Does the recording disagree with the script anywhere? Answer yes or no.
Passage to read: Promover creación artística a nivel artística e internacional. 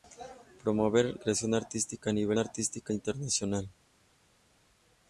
no